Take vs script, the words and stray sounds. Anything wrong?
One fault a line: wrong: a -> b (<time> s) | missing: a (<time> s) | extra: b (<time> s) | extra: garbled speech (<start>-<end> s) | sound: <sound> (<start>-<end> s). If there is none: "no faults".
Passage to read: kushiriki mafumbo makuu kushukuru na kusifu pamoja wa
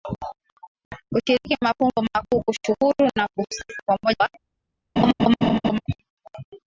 sound: laugh (5.0-5.8 s)